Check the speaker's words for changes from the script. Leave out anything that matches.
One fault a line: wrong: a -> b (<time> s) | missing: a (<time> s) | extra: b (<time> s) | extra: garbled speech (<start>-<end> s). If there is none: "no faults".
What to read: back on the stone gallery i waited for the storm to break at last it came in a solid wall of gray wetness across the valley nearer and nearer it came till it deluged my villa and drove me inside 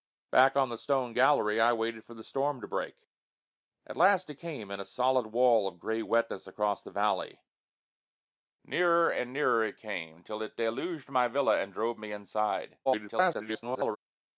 extra: garbled speech (12.9-14.0 s)